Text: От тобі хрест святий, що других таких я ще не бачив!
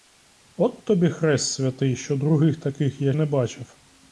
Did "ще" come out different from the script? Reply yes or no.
yes